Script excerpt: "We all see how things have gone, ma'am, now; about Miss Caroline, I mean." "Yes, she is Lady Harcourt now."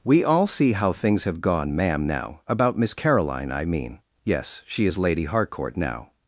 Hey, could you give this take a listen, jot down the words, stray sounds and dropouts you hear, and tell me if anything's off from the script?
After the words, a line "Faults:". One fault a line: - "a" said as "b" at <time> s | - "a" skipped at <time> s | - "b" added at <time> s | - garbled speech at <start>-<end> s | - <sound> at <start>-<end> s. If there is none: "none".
"We all see how things have gone, ma'am, now; about Miss Caroline, I mean." "Yes, she is Lady Harcourt now."
Faults:
none